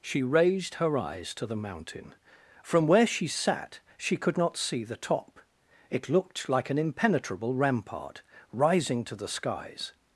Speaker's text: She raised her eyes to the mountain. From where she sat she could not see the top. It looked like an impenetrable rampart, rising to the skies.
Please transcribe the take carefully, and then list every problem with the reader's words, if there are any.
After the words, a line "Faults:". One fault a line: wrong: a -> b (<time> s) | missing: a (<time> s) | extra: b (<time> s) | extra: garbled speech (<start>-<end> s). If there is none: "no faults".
She raised her eyes to the mountain. From where she sat she could not see the top. It looked like an impenetrable rampart, rising to the skies.
Faults:
no faults